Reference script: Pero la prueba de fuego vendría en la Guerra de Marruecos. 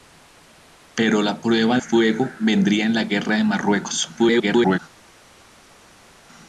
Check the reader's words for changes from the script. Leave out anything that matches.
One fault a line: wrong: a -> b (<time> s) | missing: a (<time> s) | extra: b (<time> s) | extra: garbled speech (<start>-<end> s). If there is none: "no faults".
missing: de (1.8 s)
extra: garbled speech (4.2-4.8 s)